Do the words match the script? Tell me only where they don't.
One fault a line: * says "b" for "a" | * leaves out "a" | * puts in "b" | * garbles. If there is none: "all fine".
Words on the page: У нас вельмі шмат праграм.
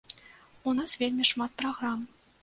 all fine